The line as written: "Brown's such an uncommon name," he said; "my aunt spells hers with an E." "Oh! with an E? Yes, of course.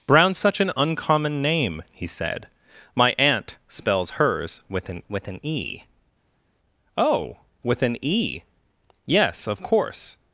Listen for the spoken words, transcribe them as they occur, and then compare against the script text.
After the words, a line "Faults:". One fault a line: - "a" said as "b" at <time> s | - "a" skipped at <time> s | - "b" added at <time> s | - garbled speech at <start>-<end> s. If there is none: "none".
"Brown's such an uncommon name," he said; "my aunt spells hers with an with an E." "Oh! with an E? Yes, of course.
Faults:
- "with an" added at 5.1 s